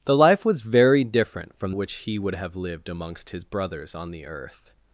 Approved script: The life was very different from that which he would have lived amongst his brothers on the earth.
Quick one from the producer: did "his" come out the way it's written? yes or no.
yes